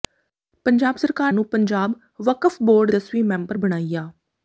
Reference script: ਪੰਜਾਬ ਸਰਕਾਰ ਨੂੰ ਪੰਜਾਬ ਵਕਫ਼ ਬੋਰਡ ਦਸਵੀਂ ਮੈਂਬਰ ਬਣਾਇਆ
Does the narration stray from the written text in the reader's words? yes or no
no